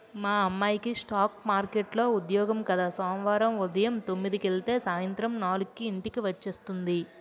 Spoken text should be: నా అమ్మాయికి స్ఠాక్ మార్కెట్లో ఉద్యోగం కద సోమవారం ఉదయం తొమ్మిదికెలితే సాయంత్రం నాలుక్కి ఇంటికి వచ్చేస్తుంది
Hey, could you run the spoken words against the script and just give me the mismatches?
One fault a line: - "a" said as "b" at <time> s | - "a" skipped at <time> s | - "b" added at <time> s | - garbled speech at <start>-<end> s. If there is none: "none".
- "నా" said as "మా" at 0.1 s